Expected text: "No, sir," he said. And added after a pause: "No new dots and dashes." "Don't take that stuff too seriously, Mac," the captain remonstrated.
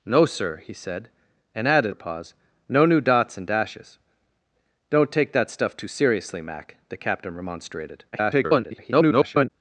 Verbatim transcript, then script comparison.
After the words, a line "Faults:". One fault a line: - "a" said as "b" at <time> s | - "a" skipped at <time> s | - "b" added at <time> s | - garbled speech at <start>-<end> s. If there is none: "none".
"No, sir," he said. And added a pause: "No new dots and dashes." "Don't take that stuff too seriously, Mac," the captain remonstrated. [garbled]
Faults:
- "after" skipped at 1.9 s
- garbled speech at 8.1-9.5 s